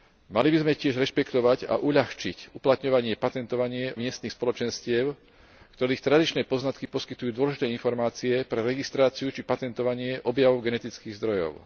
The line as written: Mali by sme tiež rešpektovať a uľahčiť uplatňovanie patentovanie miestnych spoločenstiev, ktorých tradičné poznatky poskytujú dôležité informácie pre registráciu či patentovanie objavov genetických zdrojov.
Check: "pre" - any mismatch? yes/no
no